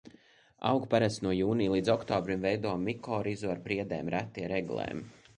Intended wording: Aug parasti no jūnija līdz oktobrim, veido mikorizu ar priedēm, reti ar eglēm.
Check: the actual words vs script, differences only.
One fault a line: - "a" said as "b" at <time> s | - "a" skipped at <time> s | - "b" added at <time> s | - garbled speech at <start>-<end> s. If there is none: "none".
none